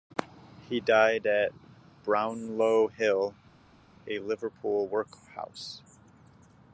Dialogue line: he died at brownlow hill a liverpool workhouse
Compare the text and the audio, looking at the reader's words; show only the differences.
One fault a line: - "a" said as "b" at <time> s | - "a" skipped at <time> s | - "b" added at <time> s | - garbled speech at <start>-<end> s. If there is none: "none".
none